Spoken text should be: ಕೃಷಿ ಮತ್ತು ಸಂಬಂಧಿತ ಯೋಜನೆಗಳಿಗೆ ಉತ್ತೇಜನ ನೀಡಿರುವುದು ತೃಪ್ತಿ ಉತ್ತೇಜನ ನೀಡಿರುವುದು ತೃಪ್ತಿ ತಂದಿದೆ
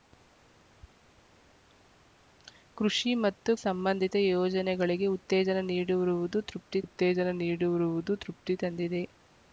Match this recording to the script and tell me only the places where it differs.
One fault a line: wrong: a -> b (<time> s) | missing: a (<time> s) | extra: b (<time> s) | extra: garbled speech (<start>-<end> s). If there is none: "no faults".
no faults